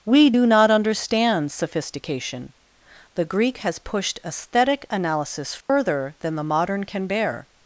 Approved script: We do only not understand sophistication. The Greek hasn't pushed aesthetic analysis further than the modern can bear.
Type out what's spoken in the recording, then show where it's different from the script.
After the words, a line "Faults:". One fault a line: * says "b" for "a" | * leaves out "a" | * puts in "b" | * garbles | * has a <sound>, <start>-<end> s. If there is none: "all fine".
We do not understand sophistication. The Greek has pushed aesthetic analysis further than the modern can bear.
Faults:
* leaves out "only"
* says "has" for "hasn't"
* has a dropout, 5.6-5.7 s